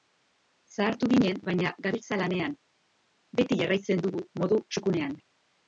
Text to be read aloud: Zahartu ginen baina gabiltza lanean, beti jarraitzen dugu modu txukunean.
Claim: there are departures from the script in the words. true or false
false